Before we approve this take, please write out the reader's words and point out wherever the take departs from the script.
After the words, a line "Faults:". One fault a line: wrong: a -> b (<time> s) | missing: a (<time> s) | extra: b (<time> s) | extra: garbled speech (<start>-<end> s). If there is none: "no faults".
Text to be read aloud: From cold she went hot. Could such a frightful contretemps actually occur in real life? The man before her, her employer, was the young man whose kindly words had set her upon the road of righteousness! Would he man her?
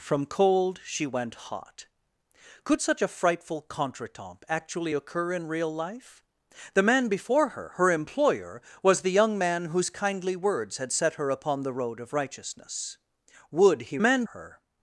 From cold she went hot. Could such a frightful contretemps actually occur in real life? The man before her, her employer, was the young man whose kindly words had set her upon the road of righteousness! Would he man her?
Faults:
no faults